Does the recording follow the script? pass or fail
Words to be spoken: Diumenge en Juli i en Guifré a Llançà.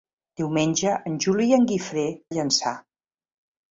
pass